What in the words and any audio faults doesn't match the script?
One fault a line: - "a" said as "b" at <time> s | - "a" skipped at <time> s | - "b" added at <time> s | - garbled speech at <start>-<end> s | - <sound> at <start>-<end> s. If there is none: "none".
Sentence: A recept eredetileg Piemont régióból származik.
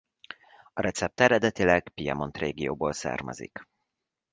none